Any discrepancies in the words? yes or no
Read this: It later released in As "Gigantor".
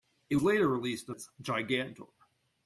no